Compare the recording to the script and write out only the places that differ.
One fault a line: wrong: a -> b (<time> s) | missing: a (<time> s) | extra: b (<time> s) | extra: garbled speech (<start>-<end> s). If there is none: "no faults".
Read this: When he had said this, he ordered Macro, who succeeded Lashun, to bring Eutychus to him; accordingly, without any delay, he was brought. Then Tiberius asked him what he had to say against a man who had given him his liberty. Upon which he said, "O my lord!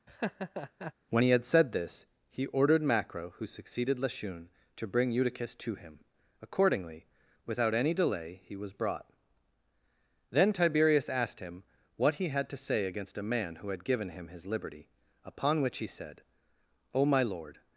no faults